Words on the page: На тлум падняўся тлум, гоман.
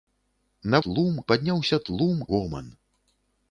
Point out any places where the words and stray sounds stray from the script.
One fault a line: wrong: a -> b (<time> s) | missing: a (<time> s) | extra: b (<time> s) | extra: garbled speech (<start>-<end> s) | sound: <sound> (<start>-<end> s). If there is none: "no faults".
no faults